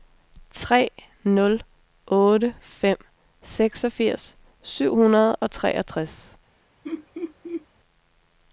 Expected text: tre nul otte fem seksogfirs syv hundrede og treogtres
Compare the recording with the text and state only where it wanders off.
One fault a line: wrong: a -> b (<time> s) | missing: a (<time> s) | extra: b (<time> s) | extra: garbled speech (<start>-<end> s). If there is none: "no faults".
no faults